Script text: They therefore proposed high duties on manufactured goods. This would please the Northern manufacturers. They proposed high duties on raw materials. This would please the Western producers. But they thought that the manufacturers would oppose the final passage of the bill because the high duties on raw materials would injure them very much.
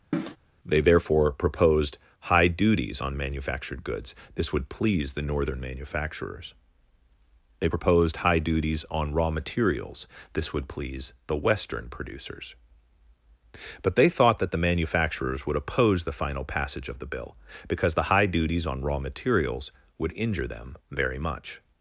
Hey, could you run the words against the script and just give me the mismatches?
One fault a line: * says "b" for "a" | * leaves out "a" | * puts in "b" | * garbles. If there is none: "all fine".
all fine